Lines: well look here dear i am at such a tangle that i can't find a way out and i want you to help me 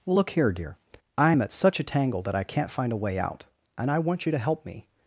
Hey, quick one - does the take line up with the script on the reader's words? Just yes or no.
yes